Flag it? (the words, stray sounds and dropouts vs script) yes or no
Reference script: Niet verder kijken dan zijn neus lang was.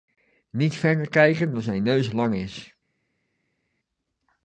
yes